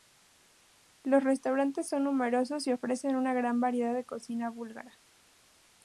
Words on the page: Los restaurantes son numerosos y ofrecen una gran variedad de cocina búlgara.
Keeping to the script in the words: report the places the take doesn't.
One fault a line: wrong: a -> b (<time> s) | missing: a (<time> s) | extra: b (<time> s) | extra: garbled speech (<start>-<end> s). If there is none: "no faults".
no faults